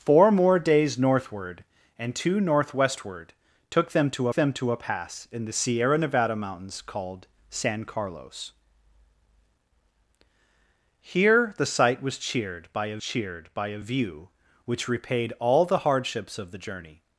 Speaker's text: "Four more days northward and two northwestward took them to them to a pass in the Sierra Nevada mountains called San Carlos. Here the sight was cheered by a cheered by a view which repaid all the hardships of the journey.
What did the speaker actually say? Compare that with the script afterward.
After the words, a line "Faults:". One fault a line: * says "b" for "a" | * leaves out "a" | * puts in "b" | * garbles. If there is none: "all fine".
"Four more days northward and two northwestward took them to them to a pass in the Sierra Nevada mountains called San Carlos. Here the sight was cheered by a cheered by a view which repaid all the hardships of the journey.
Faults:
all fine